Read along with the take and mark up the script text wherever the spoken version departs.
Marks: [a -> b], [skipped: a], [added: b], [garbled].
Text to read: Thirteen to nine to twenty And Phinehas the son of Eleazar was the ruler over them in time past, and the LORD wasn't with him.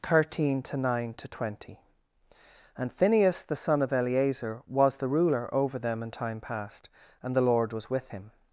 Thirteen to nine to twenty And Phinehas the son of Eleazar was the ruler over them in time past, and the LORD [wasn't -> was] with him.